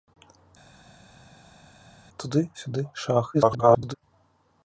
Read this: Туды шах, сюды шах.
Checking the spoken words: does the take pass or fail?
fail